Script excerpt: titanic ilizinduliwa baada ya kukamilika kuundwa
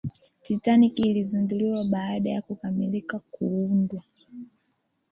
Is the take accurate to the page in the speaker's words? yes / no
yes